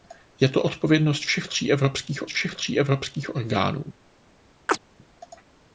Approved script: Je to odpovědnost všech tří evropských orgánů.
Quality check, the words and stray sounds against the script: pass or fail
fail